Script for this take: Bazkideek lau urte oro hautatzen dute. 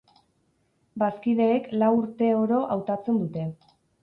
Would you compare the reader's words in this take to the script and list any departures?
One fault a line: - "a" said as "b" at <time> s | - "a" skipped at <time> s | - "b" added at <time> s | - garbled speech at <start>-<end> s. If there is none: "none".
none